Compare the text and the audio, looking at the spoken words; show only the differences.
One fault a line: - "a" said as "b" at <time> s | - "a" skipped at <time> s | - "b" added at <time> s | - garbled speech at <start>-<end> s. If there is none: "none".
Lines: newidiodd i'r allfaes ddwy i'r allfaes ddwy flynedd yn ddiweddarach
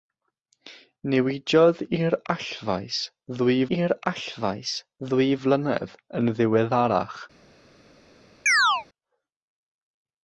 none